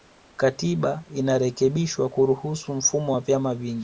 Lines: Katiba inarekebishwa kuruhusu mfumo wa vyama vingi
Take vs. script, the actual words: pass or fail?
pass